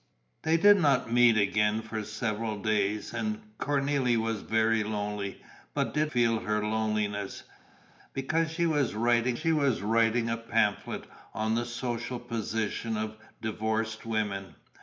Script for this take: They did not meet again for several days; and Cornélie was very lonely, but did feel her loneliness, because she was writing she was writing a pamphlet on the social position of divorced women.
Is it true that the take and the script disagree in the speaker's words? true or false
false